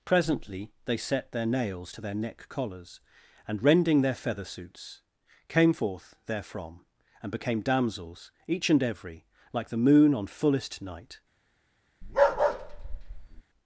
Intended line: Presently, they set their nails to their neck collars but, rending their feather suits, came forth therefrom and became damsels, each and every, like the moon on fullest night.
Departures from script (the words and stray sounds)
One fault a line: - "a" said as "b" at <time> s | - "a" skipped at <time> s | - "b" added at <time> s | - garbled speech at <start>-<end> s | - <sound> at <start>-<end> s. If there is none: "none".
- "but" said as "and" at 3.5 s
- bark at 12.0-13.4 s